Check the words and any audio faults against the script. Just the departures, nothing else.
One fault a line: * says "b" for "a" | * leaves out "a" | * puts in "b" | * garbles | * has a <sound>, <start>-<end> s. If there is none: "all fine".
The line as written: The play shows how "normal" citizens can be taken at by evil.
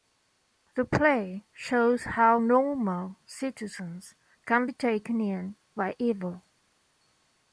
* says "in" for "at"